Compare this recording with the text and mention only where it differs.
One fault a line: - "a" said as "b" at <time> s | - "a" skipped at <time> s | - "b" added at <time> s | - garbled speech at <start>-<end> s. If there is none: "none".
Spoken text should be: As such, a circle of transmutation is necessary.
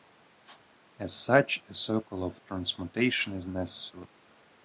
none